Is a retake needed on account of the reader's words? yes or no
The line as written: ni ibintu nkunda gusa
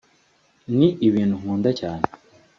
yes